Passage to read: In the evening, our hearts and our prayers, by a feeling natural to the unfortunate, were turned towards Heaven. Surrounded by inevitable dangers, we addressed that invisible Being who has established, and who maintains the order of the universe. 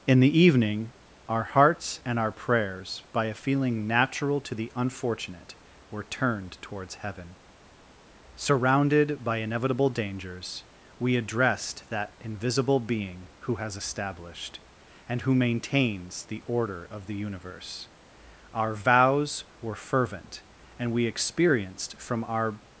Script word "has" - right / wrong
right